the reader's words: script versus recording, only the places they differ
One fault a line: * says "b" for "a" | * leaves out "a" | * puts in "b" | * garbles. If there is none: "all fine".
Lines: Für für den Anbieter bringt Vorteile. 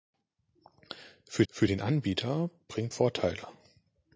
all fine